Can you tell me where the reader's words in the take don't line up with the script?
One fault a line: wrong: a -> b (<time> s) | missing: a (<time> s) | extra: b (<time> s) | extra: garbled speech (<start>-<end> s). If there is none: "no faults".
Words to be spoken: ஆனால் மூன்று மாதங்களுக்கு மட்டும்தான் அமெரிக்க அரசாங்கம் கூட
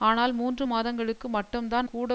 missing: அமெரிக்க அரசாங்கம் (1.9 s)